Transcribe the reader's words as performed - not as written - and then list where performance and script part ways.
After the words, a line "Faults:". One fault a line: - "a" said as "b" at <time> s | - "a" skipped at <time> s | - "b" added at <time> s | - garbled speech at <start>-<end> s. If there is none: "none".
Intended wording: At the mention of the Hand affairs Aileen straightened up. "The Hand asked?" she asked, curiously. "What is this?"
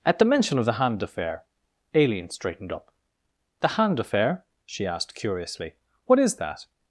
At the mention of the Hand affair Aileen straightened up. "The Hand affair?" she asked, curiously. "What is that?"
Faults:
- "affairs" said as "affair" at 1.0 s
- "asked" said as "affair" at 4.0 s
- "this" said as "that" at 6.4 s